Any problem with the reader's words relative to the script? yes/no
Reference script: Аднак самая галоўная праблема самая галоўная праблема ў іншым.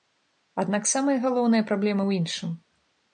yes